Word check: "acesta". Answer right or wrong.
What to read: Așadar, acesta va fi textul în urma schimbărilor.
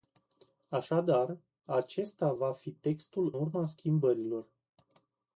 right